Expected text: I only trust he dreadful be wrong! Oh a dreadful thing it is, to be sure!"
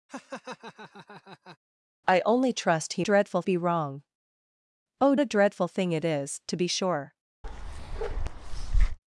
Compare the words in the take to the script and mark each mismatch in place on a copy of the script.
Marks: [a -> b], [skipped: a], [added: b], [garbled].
I only trust he dreadful be wrong! Oh a dreadful thing it is, to be sure!"